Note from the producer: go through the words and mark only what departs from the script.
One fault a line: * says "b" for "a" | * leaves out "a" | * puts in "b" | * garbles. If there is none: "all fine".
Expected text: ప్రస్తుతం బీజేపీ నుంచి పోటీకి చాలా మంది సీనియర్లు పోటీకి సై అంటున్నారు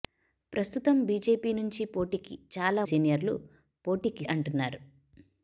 * leaves out "మంది"
* leaves out "సై"